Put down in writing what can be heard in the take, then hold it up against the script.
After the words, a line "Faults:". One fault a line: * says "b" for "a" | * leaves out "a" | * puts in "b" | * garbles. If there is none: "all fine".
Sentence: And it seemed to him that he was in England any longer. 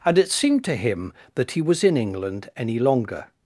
And it seemed to him that he was in England any longer.
Faults:
all fine